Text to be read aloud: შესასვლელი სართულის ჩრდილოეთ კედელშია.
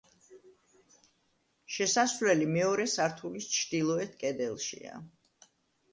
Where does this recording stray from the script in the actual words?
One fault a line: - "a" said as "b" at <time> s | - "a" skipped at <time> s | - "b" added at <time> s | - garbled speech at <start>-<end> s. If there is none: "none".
- "მეორე" added at 2.5 s